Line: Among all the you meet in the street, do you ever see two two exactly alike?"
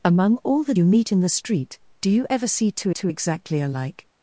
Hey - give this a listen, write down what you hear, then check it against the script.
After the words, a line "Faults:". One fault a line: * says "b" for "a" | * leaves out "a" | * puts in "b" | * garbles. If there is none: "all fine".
Among all the you meet in the street, do you ever see two two exactly alike?"
Faults:
all fine